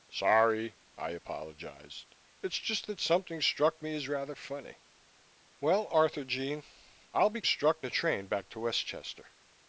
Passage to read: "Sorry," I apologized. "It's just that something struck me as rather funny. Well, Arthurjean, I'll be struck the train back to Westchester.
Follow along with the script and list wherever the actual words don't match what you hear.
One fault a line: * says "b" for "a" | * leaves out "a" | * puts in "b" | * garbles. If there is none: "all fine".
all fine